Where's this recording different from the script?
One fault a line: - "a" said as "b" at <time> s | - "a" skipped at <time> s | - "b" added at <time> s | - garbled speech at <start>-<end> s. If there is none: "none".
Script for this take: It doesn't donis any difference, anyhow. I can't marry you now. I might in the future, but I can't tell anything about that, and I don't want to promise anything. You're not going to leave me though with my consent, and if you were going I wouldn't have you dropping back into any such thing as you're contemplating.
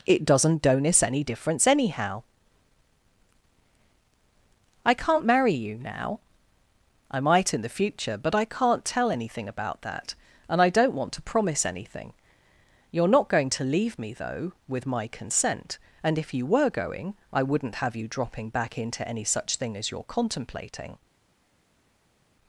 none